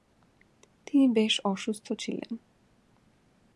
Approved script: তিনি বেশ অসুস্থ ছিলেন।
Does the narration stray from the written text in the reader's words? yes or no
no